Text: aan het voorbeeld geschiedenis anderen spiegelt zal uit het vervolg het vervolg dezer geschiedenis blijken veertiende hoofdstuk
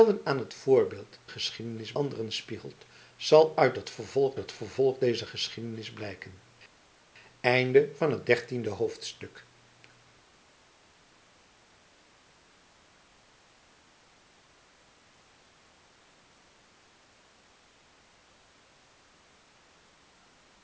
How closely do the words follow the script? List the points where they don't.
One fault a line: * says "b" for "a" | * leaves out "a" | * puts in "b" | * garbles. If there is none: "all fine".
all fine